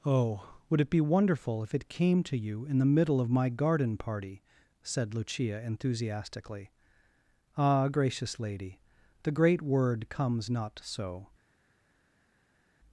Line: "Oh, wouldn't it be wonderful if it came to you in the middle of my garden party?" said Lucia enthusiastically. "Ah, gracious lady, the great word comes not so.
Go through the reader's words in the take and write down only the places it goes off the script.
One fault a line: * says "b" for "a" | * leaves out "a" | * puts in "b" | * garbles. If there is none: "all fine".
* says "would" for "wouldn't"